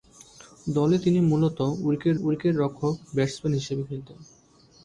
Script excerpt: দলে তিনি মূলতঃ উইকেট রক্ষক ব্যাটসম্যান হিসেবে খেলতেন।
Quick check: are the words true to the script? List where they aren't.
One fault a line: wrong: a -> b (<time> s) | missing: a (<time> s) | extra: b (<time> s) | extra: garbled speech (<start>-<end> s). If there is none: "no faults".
extra: উইকেট (2.2 s)